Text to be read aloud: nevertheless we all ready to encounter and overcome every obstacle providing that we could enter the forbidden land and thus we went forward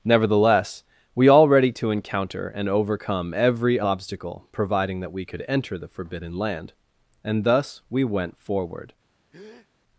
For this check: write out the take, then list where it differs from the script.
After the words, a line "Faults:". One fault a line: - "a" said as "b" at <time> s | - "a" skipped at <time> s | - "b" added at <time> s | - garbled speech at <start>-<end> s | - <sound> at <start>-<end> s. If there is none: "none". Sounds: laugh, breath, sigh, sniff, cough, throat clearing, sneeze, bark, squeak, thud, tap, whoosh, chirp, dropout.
nevertheless we all ready to encounter and overcome every obstacle providing that we could enter the forbidden land and thus we went forward
Faults:
- breath at 9.3-9.7 s